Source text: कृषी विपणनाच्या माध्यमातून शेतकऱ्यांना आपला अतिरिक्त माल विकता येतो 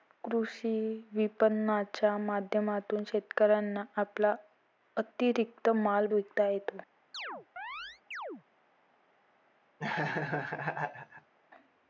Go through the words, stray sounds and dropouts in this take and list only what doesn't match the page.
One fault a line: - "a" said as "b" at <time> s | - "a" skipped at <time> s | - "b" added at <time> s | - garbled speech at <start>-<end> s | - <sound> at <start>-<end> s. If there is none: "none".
- chirp at 7.1-8.4 s
- laugh at 9.8-11.3 s